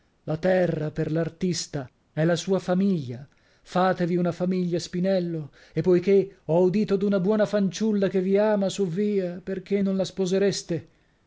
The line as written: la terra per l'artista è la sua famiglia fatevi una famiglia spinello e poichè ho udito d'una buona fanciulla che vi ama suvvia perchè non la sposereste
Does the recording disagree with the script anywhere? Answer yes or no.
no